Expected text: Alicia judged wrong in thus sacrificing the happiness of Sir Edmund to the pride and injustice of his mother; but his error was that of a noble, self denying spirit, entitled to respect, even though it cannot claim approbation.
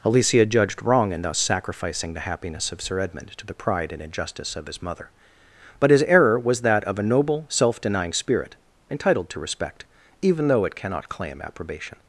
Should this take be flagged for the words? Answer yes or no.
no